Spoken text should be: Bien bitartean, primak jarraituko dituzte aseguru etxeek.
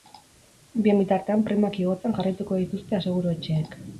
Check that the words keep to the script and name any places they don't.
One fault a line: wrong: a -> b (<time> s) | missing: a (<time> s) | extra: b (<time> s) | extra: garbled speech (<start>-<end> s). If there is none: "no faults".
extra: igotzen (1.8 s)